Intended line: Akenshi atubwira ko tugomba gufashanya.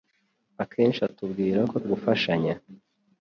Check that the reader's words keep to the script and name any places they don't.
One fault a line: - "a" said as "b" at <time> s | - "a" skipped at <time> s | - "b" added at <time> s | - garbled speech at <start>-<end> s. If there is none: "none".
- "tugomba" skipped at 1.8 s